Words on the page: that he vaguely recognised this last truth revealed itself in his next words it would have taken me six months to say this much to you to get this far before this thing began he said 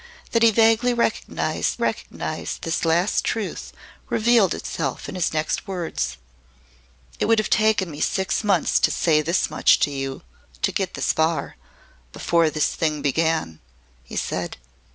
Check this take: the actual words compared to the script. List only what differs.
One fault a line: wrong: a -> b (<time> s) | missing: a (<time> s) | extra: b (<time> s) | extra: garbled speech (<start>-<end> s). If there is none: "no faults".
extra: recognised (1.8 s)